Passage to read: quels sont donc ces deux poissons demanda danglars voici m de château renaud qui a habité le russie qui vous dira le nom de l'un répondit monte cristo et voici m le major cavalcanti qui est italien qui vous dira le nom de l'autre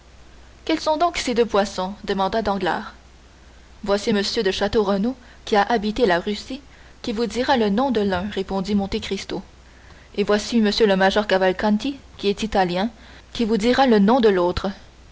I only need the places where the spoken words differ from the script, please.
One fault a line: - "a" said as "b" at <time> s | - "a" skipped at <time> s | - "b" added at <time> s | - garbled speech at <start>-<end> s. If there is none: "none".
- "le" said as "la" at 6.1 s